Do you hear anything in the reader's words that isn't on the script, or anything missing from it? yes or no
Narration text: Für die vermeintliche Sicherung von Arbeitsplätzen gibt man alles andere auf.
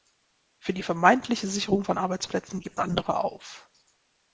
yes